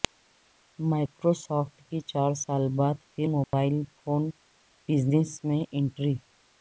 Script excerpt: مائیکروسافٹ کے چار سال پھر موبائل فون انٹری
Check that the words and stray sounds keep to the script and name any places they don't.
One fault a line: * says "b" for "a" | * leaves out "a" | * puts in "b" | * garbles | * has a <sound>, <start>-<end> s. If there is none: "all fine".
* says "کی" for "کے"
* puts in "بعد"
* has a dropout, 3.4-3.5 s
* puts in "بزنس میں"